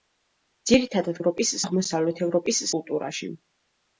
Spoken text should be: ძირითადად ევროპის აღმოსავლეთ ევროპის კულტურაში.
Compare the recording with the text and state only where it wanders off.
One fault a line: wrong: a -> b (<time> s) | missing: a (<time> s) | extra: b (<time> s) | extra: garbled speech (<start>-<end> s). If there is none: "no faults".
no faults